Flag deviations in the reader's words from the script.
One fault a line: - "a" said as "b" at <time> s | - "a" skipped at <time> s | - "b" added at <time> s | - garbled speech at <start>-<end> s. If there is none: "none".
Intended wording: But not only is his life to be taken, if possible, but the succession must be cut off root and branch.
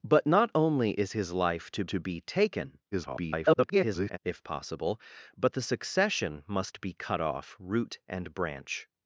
- "to" added at 1.9 s
- garbled speech at 2.9-4.2 s